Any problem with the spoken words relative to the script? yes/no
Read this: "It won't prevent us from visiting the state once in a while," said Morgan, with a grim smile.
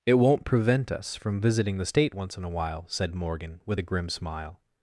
no